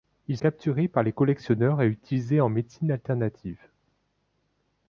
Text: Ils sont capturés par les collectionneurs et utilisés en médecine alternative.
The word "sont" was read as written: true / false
false